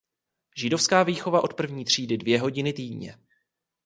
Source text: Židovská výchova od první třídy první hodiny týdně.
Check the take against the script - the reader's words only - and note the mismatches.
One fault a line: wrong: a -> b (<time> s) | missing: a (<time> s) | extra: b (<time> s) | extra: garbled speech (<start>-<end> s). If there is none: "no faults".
wrong: první -> dvě (2.2 s)